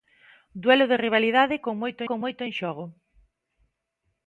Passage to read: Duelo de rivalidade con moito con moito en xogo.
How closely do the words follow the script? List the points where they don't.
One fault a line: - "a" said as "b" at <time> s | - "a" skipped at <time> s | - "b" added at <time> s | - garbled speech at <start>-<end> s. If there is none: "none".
none